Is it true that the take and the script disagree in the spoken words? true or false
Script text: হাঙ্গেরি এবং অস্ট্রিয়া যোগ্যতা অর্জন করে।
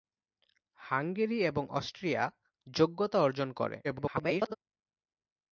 true